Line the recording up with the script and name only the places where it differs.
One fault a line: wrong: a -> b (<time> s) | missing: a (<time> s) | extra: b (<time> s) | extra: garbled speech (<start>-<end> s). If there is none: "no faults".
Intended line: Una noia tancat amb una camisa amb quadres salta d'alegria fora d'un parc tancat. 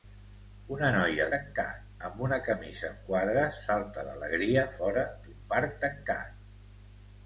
no faults